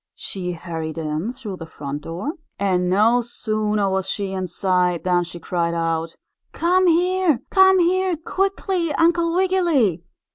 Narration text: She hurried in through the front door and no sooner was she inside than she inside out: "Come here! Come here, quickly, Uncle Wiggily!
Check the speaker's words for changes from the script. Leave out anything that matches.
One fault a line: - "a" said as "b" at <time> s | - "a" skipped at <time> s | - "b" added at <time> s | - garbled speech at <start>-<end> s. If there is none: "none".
- "inside" said as "cried" at 5.4 s